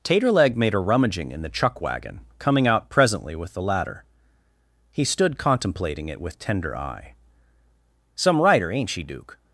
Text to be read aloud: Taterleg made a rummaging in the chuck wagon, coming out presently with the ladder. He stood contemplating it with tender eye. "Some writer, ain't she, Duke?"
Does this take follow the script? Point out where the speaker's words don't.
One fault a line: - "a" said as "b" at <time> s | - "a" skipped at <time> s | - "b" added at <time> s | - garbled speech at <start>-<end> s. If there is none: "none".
none